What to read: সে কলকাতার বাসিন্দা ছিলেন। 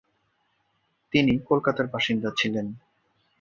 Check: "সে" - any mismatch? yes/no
yes